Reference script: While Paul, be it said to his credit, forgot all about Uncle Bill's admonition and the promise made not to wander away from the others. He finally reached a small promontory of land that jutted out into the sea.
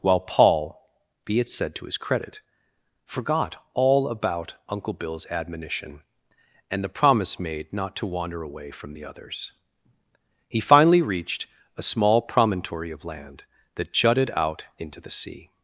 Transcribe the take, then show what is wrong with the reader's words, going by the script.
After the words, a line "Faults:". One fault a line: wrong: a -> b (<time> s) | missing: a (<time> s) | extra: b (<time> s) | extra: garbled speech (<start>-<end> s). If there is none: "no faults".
While Paul, be it said to his credit, forgot all about Uncle Bill's admonition and the promise made not to wander away from the others. He finally reached a small promontory of land that jutted out into the sea.
Faults:
no faults